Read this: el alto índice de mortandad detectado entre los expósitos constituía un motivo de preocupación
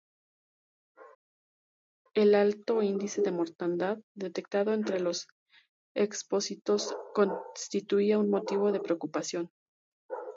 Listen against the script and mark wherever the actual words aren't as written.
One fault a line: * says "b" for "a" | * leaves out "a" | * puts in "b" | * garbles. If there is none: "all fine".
all fine